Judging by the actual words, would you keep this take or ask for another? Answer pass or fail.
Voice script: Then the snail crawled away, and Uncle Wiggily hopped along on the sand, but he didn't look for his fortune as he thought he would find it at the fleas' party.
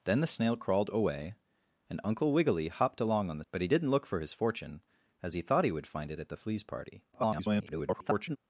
fail